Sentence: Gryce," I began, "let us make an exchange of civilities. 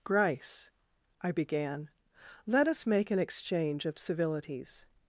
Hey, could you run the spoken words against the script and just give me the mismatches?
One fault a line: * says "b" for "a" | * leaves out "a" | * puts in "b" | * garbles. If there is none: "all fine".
all fine